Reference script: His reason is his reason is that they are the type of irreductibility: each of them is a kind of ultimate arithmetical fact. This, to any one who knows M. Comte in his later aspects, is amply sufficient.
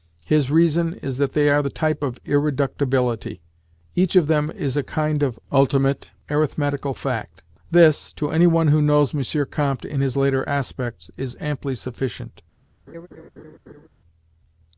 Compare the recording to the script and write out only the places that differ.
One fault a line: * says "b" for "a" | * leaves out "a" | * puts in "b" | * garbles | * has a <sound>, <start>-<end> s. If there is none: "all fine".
* leaves out "his reason is"
* has a laugh, 12.9-13.9 s